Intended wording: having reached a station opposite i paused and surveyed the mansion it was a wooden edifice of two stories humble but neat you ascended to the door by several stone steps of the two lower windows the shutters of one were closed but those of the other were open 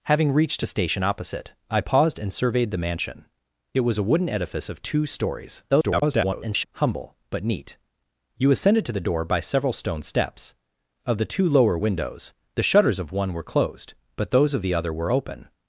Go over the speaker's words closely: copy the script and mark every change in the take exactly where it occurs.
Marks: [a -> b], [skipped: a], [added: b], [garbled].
having reached a station opposite i paused and surveyed the mansion it was a wooden edifice of two stories [garbled] humble but neat you ascended to the door by several stone steps of the two lower windows the shutters of one were closed but those of the other were open